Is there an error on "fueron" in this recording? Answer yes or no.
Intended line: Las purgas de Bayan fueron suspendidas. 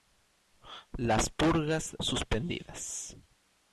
yes